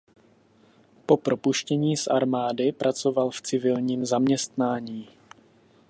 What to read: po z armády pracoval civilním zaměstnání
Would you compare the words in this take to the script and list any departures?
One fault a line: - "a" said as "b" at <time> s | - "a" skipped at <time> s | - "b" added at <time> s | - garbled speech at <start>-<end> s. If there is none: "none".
- "propuštění" added at 1.2 s
- "v" added at 3.3 s